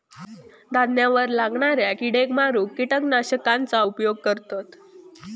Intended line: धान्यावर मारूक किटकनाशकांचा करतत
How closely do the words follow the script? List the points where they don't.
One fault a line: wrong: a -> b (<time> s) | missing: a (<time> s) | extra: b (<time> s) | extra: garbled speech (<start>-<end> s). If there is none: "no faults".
extra: लागणाऱ्या किडेक (1.3 s)
extra: उपयोग (3.8 s)